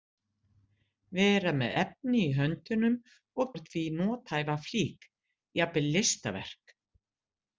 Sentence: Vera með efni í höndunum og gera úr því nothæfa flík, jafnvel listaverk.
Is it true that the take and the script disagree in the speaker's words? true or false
true